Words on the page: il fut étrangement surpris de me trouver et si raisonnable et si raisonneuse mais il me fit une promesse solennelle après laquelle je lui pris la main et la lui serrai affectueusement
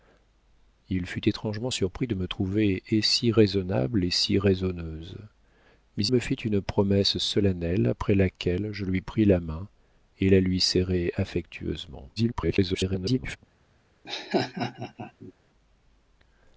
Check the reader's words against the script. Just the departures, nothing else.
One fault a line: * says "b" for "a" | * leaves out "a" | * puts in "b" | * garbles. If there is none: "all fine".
* leaves out "il"
* garbles